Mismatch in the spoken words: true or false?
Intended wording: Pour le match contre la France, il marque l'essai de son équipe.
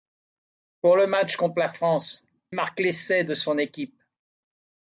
true